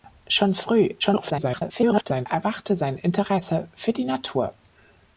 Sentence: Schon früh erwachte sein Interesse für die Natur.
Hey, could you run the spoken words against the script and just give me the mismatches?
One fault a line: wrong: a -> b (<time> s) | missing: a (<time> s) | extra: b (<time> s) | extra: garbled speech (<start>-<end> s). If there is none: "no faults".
extra: garbled speech (1.0-2.3 s)